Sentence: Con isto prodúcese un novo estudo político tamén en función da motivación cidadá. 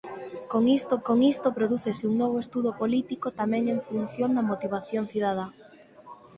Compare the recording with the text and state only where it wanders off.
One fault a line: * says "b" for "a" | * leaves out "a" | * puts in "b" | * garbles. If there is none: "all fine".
* puts in "con isto"